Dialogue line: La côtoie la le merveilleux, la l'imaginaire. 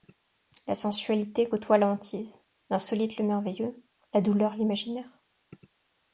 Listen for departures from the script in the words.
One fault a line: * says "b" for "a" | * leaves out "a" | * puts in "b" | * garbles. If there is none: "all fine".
* puts in "sensualité"
* puts in "hantise l'insolite"
* puts in "douleur"